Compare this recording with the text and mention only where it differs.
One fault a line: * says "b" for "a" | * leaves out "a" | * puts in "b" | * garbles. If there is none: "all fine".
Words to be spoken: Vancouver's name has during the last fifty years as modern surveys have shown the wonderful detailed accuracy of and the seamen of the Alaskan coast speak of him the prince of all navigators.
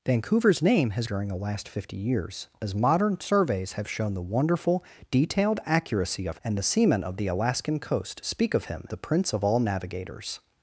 all fine